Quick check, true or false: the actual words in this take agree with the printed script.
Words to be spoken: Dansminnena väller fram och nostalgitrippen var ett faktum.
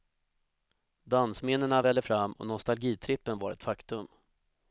true